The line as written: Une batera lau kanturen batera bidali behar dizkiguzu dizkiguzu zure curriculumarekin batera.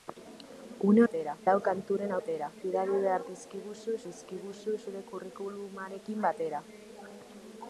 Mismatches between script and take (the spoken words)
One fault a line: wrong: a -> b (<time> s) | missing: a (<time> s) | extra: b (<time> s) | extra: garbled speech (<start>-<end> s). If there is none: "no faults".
no faults